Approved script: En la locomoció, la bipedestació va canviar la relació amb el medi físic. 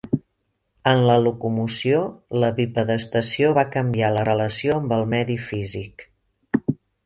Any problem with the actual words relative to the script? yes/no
no